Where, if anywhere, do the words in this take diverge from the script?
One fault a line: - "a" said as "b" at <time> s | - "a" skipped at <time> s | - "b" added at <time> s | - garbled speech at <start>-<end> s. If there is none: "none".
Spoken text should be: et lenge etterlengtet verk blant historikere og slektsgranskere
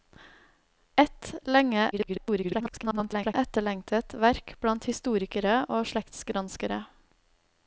- garbled speech at 1.9-3.3 s